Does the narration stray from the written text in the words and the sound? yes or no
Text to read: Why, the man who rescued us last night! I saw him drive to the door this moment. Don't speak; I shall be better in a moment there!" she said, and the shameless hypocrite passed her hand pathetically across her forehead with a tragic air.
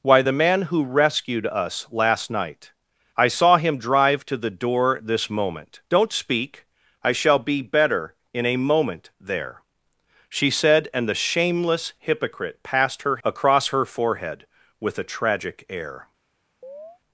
yes